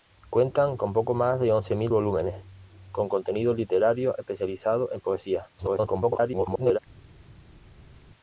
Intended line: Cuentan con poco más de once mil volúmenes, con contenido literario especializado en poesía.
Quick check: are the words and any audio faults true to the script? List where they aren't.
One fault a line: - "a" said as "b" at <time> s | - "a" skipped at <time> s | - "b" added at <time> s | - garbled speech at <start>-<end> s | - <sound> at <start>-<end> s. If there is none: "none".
- garbled speech at 5.6-6.8 s